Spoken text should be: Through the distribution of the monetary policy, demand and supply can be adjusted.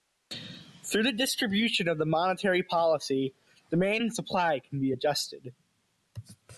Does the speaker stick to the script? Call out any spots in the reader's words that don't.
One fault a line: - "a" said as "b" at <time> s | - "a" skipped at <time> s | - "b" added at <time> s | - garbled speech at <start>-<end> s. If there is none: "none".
none